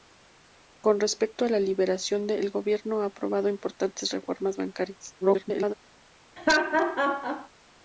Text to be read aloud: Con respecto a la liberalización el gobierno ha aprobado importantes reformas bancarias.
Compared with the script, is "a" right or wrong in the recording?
right